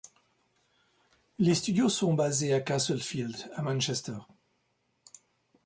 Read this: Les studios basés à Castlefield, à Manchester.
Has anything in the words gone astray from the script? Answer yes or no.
yes